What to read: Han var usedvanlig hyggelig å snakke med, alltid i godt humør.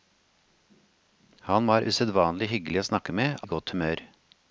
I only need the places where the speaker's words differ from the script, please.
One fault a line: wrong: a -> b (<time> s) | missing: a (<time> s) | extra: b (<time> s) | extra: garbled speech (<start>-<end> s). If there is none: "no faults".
missing: alltid (3.4 s)